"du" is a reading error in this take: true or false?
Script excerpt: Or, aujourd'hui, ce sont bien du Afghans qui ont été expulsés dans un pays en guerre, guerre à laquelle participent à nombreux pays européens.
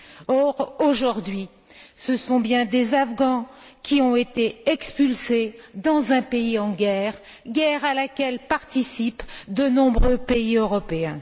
true